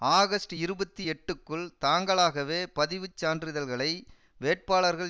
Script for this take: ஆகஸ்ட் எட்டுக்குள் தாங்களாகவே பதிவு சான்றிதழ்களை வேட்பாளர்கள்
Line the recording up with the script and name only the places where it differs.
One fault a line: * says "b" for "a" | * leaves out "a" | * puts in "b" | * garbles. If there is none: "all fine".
* puts in "இருபத்தி"